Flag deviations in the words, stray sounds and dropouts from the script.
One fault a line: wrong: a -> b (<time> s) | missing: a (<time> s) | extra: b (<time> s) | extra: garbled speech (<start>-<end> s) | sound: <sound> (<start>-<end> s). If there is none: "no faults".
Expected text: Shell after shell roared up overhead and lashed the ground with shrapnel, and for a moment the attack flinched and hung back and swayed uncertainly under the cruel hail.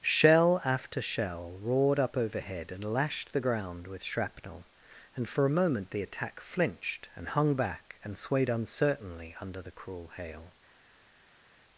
no faults